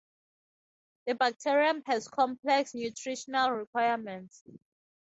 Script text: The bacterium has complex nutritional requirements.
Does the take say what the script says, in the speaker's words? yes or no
yes